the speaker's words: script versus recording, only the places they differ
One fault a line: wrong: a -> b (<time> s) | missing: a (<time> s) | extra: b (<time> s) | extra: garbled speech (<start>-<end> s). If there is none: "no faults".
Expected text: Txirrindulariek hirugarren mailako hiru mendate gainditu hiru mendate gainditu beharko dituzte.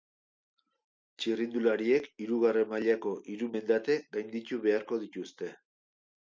missing: hiru mendate gainditu (4.6 s)